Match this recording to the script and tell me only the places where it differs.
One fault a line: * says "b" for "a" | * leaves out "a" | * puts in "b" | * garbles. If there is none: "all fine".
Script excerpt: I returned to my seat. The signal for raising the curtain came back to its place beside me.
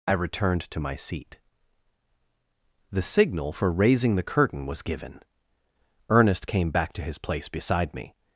* puts in "was given Ernest"
* says "his" for "its"